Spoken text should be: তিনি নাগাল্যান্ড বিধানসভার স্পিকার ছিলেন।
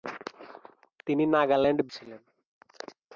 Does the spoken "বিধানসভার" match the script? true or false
false